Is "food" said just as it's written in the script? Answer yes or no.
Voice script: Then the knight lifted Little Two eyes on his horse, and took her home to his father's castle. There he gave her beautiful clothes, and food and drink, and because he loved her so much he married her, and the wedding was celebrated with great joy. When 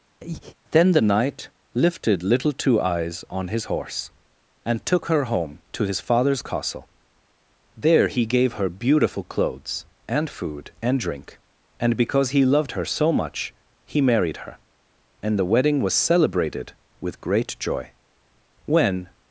yes